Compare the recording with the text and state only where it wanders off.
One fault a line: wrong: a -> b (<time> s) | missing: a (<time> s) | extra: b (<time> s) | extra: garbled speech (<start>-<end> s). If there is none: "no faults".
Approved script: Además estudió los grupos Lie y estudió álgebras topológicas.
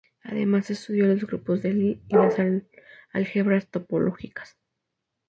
extra: de (1.6 s)
wrong: estudió -> las (2.1 s)